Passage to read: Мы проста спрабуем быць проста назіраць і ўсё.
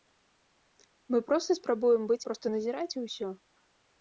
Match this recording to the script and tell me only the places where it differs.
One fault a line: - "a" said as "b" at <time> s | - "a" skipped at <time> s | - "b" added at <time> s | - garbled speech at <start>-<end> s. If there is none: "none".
none